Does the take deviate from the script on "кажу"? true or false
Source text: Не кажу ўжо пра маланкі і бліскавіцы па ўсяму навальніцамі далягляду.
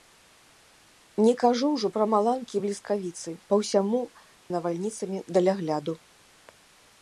false